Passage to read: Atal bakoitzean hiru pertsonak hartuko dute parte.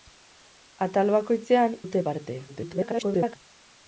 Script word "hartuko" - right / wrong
wrong